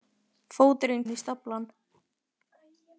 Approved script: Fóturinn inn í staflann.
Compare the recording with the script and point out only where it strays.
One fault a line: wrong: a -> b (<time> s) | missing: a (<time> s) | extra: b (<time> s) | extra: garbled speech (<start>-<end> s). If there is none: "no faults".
no faults